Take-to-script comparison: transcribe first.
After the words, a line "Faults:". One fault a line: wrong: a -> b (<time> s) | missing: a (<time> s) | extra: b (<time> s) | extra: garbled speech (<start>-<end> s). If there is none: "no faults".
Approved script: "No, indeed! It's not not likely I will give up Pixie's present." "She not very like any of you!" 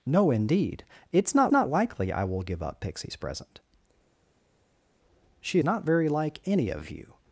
"No, indeed! It's not not likely I will give up Pixie's present." "She not very like any of you!"
Faults:
no faults